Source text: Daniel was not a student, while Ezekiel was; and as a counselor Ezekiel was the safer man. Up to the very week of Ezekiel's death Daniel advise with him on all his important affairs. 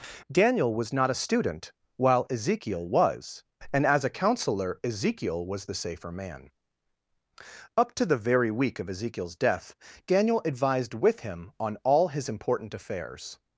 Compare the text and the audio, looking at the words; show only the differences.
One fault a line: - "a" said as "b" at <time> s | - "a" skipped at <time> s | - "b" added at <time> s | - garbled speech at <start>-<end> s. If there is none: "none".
- "advise" said as "advised" at 10.4 s